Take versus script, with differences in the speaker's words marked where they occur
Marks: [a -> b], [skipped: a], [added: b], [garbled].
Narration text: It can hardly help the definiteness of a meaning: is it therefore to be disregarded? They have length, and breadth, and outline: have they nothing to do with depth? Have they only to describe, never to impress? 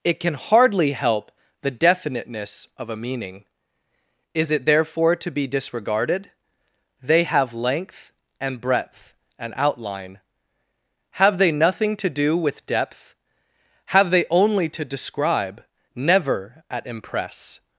It can hardly help the definiteness of a meaning: is it therefore to be disregarded? They have length, and breadth, and outline: have they nothing to do with depth? Have they only to describe, never [to -> at] impress?